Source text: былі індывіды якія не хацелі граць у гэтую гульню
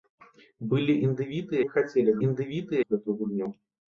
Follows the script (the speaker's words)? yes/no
no